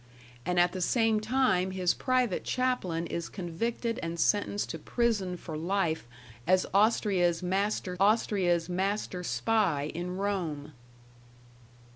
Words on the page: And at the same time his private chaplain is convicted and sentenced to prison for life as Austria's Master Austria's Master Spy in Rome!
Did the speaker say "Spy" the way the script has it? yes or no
yes